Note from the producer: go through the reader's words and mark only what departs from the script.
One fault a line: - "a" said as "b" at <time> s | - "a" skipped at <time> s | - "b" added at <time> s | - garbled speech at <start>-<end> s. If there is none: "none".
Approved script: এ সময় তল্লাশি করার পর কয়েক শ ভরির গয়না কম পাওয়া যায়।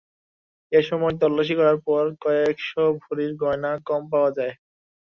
none